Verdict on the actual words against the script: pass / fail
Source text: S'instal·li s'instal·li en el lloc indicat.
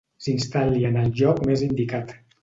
fail